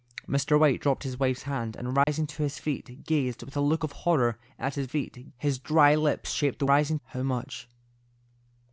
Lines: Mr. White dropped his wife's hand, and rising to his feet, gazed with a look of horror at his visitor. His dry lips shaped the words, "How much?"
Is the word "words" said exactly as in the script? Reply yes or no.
no